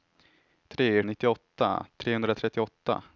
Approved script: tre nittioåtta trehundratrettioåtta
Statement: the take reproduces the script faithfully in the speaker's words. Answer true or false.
true